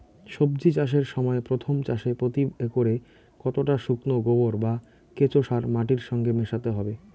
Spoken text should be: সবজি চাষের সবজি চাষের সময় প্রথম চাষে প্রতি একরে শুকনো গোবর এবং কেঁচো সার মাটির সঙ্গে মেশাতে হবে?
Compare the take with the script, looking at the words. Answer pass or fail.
fail